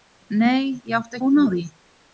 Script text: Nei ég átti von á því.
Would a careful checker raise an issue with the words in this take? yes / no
no